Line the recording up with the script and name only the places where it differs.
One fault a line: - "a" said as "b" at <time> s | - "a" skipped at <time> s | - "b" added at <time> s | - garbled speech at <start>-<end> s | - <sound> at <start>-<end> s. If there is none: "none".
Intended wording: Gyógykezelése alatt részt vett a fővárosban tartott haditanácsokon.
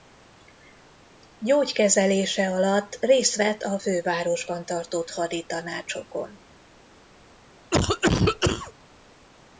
- cough at 7.7-8.7 s